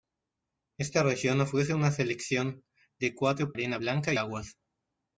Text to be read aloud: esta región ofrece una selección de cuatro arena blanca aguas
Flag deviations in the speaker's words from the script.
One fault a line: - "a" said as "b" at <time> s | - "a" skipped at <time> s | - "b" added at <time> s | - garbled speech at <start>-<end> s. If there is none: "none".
none